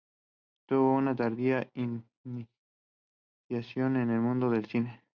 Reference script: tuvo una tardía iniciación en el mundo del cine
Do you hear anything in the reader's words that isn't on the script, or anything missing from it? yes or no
no